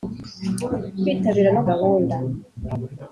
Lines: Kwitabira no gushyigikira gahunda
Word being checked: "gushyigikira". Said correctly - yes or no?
no